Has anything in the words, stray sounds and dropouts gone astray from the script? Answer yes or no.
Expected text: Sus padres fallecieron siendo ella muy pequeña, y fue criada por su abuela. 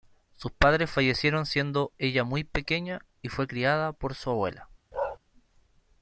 yes